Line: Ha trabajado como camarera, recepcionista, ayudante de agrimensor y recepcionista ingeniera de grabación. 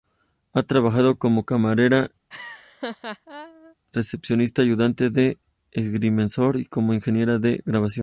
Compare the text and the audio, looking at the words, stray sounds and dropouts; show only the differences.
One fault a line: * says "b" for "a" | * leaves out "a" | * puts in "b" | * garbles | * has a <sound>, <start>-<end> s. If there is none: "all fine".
* has a laugh, 2.3-3.8 s
* says "como" for "recepcionista"